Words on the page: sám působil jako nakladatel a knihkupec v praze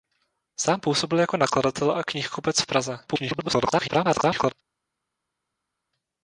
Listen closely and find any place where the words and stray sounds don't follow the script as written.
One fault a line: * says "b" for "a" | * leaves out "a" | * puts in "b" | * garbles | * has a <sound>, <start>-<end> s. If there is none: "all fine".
* garbles